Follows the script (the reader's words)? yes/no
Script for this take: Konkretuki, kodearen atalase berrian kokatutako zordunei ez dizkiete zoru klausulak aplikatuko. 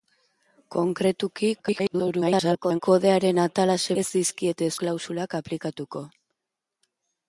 no